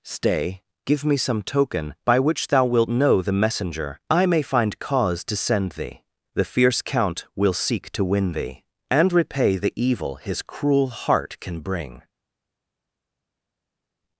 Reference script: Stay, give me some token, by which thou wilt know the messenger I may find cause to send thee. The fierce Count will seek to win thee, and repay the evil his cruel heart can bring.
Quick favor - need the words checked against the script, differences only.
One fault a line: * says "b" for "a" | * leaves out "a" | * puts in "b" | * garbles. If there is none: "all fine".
all fine